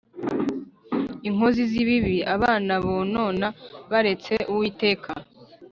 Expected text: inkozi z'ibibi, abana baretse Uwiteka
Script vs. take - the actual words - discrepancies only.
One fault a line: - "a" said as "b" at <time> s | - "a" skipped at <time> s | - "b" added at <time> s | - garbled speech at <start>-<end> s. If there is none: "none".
- "bonona" added at 2.9 s